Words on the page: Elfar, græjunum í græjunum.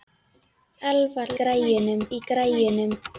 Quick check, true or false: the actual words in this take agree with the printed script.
true